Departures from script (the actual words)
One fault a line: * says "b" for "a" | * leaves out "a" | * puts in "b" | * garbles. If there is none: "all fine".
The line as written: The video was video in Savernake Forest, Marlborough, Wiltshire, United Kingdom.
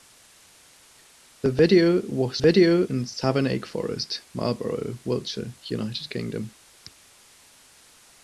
all fine